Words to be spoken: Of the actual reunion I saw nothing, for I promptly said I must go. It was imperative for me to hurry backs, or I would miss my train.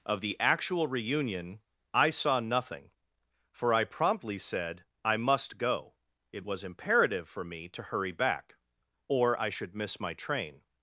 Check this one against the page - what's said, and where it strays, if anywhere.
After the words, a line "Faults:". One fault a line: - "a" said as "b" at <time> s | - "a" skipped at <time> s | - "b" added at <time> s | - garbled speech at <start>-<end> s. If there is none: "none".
Of the actual reunion I saw nothing, for I promptly said I must go. It was imperative for me to hurry back, or I should miss my train.
Faults:
- "backs" said as "back" at 8.1 s
- "would" said as "should" at 9.5 s